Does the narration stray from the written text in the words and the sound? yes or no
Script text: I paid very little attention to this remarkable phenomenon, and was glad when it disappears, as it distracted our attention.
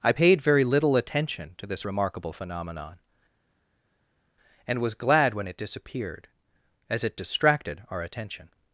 yes